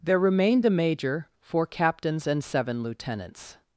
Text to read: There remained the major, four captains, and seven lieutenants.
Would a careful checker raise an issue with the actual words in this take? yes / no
yes